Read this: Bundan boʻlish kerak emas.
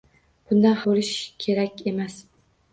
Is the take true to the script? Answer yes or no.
yes